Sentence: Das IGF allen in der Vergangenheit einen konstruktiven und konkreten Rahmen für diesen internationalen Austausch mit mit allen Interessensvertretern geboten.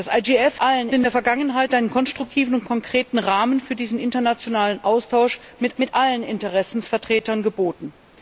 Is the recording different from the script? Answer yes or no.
no